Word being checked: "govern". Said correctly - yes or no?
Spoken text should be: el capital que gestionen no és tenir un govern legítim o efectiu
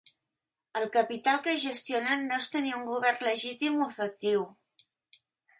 yes